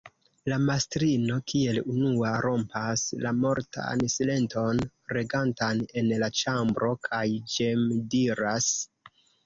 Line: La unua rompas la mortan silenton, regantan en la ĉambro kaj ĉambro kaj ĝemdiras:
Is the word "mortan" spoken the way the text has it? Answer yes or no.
yes